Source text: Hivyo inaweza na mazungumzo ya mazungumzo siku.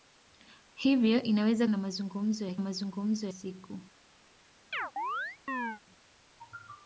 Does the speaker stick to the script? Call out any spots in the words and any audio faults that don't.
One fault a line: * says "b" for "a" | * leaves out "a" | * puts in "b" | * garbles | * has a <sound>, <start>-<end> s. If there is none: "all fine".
* has a chirp, 4.7-5.8 s